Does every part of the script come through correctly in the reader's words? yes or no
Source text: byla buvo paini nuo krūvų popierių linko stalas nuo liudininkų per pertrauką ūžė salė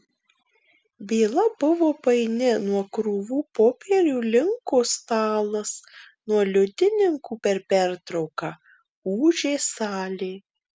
yes